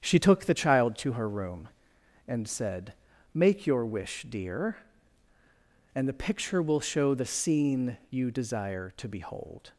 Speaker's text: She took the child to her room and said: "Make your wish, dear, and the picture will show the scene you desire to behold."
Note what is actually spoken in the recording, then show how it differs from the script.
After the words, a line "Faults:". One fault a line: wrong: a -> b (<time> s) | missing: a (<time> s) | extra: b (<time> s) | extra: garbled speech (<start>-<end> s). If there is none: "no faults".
She took the child to her room and said: "Make your wish, dear, and the picture will show the scene you desire to behold."
Faults:
no faults